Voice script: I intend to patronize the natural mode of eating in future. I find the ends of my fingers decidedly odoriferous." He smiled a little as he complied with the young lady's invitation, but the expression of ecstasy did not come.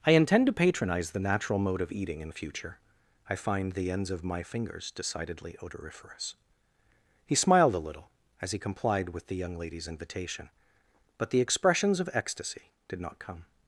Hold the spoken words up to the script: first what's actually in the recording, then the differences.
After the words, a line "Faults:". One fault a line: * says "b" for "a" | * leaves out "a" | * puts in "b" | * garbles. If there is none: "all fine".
I intend to patronize the natural mode of eating in future. I find the ends of my fingers decidedly odoriferous." He smiled a little as he complied with the young lady's invitation, but the expressions of ecstasy did not come.
Faults:
* says "expressions" for "expression"